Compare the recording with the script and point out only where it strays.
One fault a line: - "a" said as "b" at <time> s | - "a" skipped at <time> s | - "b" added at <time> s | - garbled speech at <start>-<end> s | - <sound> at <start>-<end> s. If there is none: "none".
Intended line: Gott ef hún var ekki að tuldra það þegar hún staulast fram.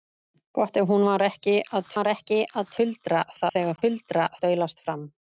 - "var ekki að" added at 1.9 s
- "hún" said as "tuldra" at 3.8 s